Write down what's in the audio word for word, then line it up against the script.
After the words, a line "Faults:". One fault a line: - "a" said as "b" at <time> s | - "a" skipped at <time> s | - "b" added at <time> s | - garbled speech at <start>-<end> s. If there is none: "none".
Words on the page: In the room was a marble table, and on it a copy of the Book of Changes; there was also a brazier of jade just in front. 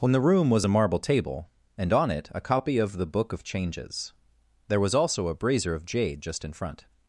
In the room was a marble table, and on it a copy of the Book of Changes; there was also a brazier of jade just in front.
Faults:
none